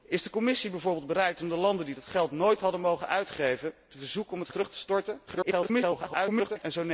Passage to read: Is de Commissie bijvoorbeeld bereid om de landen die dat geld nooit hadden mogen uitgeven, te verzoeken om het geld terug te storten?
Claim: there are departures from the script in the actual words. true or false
true